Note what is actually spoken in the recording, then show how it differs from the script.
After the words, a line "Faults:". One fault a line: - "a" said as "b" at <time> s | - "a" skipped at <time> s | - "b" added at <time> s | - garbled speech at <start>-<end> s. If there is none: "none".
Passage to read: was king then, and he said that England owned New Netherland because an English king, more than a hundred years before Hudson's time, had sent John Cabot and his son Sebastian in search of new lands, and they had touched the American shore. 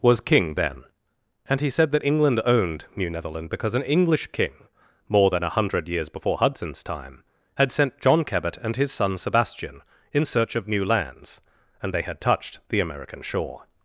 was king then, and he said that England owned New Netherland because an English king, more than a hundred years before Hudson's time, had sent John Cabot and his son Sebastian in search of new lands, and they had touched the American shore.
Faults:
none